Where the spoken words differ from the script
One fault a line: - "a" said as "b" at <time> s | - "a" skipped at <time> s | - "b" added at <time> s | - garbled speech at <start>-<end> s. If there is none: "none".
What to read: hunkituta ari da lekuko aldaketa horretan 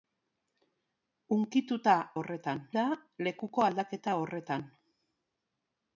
- "ari" said as "horretan" at 2.2 s